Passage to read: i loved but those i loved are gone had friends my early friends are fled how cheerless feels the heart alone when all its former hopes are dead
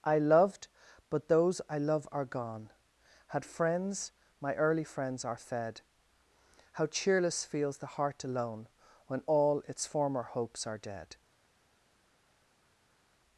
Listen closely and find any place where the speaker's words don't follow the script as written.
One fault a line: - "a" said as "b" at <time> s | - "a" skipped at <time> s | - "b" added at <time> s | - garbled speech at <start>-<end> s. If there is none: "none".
- "loved" said as "love" at 1.8 s
- "fled" said as "fed" at 5.4 s